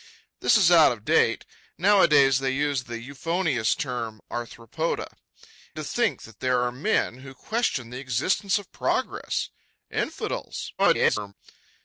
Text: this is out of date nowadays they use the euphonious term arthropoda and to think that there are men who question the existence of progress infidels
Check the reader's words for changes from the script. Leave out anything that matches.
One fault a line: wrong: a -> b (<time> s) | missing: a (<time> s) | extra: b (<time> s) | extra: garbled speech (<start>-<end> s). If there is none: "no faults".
missing: and (5.1 s)
extra: garbled speech (10.8-11.3 s)